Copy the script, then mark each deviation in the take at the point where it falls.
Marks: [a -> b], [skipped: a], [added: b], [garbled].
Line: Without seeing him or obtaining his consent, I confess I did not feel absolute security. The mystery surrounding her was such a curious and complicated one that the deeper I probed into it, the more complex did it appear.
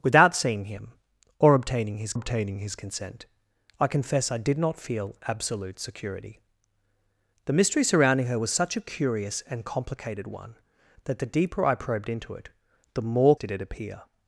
Without seeing him or obtaining his [added: obtaining his] consent, I confess I did not feel absolute security. The mystery surrounding her was such a curious and complicated one that the deeper I probed into it, the more [skipped: complex] did it appear.